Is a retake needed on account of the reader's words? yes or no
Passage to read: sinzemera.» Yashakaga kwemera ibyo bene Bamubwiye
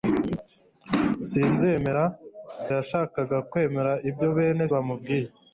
no